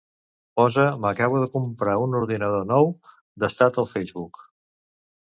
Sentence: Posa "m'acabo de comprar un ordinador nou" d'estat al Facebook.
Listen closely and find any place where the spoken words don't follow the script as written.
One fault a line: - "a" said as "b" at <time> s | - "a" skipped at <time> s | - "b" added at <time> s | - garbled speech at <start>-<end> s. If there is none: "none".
none